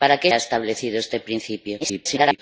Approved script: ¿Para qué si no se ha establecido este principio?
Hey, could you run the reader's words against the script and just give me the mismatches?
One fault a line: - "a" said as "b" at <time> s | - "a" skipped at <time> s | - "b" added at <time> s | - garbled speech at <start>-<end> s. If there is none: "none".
- "si no se" skipped at 0.3 s
- garbled speech at 1.8-2.4 s